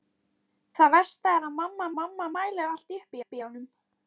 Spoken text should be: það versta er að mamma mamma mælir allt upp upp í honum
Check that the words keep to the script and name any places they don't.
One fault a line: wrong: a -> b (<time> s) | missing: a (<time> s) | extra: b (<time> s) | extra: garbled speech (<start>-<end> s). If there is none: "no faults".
no faults